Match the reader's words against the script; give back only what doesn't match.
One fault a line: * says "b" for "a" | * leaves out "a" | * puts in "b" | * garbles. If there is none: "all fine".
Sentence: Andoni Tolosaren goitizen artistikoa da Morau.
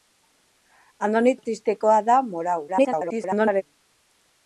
* leaves out "Tolosaren goitizen"
* garbles